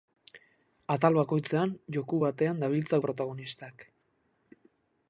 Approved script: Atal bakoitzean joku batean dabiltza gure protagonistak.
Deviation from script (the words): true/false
true